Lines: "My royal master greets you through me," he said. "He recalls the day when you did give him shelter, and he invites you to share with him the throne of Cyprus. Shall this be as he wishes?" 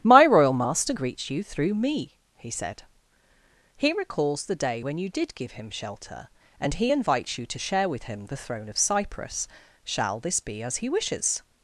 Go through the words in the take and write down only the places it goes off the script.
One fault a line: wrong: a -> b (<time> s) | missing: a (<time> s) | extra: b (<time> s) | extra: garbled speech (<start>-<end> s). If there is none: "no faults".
no faults